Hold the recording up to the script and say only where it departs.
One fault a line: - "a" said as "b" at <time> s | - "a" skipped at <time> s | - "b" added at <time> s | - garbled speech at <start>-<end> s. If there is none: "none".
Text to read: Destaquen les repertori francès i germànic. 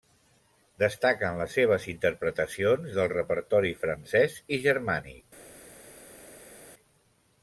- "seves interpretacions del" added at 1.6 s